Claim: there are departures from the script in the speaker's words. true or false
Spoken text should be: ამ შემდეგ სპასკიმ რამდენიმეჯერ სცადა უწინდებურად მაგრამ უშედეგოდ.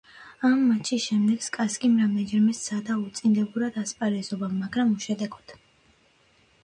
true